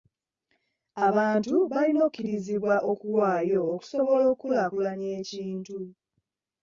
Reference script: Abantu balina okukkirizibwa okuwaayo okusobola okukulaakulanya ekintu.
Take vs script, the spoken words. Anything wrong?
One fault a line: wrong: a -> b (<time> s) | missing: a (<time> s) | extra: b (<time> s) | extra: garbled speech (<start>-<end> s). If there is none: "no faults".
no faults